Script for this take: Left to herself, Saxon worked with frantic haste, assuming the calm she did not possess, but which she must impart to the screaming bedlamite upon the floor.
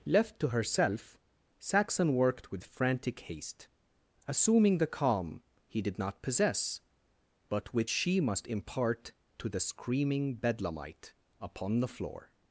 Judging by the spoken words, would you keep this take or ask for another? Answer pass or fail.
fail